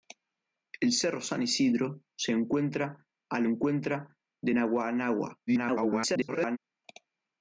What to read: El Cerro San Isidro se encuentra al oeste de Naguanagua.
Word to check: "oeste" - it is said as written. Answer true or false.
false